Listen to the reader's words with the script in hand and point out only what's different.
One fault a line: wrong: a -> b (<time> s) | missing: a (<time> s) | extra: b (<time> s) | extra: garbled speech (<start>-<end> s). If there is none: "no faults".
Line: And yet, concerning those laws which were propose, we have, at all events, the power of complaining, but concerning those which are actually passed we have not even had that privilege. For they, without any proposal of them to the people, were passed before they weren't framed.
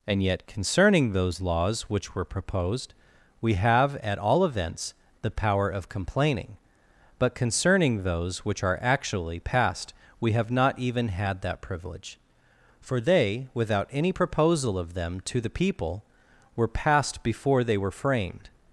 wrong: propose -> proposed (2.2 s)
wrong: weren't -> were (17.8 s)